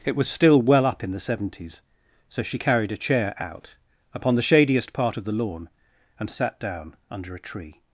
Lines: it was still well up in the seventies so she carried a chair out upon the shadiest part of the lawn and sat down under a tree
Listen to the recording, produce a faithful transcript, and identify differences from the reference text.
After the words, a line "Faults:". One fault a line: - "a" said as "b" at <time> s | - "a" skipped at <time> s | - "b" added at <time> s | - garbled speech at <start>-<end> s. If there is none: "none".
it was still well up in the seventies so she carried a chair out upon the shadiest part of the lawn and sat down under a tree
Faults:
none